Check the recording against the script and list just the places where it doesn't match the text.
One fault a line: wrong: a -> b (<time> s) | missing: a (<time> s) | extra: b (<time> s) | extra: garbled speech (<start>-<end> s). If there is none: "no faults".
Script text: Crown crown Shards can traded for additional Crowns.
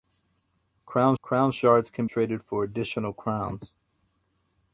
no faults